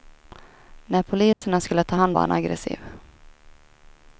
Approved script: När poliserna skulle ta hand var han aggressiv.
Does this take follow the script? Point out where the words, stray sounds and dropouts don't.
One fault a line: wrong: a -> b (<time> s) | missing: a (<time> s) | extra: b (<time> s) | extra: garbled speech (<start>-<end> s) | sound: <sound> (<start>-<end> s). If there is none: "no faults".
sound: dropout (1.3-1.4 s)